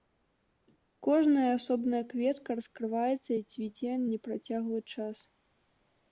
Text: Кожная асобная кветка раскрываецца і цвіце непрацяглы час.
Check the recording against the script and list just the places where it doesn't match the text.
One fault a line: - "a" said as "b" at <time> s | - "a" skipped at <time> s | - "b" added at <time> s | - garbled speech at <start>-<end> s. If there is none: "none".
none